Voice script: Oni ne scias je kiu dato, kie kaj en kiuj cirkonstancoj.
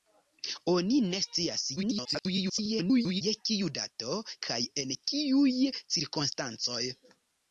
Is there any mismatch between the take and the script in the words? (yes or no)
yes